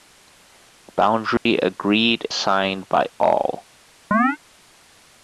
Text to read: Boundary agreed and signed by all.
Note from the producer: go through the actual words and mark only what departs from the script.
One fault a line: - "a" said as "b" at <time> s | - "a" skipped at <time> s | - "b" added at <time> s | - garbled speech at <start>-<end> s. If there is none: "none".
- "and" skipped at 2.3 s